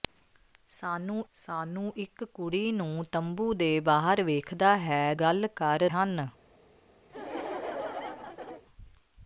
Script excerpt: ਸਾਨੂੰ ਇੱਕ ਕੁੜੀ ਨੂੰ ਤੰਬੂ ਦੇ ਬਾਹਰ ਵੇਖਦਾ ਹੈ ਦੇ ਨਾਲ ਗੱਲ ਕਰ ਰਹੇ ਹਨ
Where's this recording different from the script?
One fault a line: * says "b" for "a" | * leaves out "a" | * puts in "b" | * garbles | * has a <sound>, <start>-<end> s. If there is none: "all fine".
* puts in "ਸਾਨੂੰ"
* leaves out "ਦੇ ਨਾਲ"
* leaves out "ਰਹੇ"
* has a laugh, 7.1-8.6 s